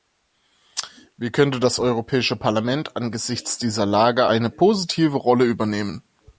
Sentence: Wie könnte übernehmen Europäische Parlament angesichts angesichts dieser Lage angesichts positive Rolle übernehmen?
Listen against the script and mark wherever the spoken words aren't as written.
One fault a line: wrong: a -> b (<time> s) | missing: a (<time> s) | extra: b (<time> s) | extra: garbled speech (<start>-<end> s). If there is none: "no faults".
wrong: übernehmen -> das (1.6 s)
missing: angesichts (3.6 s)
wrong: angesichts -> eine (4.3 s)